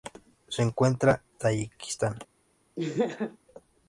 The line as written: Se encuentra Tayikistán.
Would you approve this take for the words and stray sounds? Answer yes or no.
no